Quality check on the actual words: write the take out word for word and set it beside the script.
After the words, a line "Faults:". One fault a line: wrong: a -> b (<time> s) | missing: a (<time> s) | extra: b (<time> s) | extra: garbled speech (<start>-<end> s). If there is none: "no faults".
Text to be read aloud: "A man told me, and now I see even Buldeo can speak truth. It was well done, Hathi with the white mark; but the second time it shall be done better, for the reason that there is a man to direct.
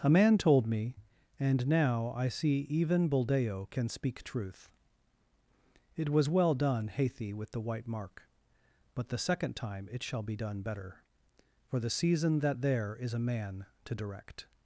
"A man told me, and now I see even Buldeo can speak truth. It was well done, Hathi with the white mark; but the second time it shall be done better, for the season that there is a man to direct.
Faults:
wrong: reason -> season (11.9 s)